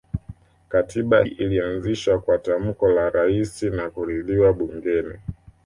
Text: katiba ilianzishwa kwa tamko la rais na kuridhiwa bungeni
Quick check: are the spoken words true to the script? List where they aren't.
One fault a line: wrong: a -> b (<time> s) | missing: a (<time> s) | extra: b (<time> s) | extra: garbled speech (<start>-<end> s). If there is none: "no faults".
no faults